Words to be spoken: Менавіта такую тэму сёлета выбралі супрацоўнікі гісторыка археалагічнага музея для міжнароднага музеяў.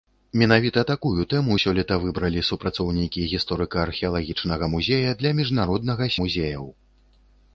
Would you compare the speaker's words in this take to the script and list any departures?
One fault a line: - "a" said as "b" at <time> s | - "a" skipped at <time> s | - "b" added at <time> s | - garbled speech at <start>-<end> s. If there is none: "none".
none